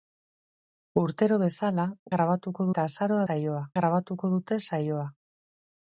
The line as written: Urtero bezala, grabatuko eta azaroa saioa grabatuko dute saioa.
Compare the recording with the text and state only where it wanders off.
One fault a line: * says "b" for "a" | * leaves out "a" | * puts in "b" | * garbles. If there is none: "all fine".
all fine